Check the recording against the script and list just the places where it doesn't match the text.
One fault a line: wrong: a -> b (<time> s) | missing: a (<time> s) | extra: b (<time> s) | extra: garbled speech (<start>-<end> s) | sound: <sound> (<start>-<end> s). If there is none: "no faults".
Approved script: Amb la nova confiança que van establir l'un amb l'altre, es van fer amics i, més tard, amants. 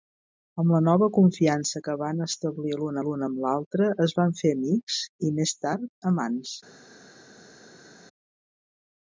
extra: l'un (3.0 s)